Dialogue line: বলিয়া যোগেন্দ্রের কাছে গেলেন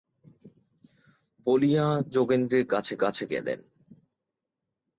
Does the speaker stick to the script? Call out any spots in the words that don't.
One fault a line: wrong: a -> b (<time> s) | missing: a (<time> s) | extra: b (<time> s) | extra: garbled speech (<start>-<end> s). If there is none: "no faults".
extra: কাছে (3.0 s)